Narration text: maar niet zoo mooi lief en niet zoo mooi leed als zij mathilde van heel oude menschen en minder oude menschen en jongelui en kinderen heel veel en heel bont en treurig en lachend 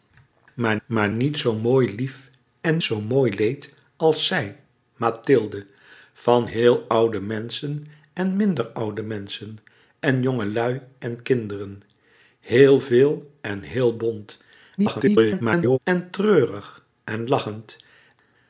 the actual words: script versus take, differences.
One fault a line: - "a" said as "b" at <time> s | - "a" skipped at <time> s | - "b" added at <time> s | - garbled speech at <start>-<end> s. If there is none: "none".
- "maar" added at 0.8 s
- "niet" skipped at 2.8 s
- garbled speech at 14.8-15.8 s